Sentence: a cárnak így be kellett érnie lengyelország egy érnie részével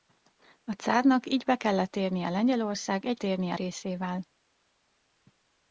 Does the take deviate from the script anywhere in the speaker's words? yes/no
no